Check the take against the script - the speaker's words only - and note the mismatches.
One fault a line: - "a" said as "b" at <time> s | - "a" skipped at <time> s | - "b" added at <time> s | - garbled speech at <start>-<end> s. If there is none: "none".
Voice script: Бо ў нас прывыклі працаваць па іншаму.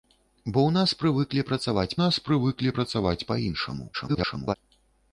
- "нас прывыклі працаваць" added at 2.0 s
- garbled speech at 3.9-4.5 s